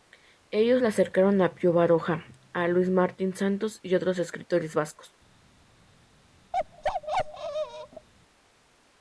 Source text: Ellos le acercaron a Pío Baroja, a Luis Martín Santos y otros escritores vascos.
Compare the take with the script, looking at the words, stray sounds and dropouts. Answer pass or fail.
fail